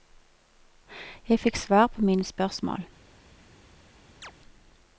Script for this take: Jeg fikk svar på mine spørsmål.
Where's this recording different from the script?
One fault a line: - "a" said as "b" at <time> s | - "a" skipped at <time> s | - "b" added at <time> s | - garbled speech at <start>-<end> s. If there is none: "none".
none